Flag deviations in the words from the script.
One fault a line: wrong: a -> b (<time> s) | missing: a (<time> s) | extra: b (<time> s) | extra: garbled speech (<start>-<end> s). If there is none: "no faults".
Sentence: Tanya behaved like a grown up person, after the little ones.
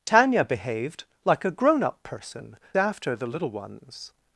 no faults